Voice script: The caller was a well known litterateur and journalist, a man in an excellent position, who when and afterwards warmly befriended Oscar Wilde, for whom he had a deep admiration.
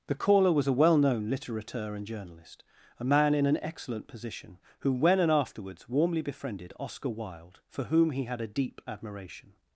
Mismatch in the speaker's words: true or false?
false